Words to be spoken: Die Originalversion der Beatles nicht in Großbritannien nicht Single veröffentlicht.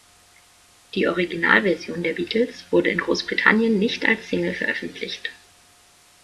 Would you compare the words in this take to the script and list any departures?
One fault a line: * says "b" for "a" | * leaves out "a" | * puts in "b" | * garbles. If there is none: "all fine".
* says "wurde" for "nicht"
* puts in "als"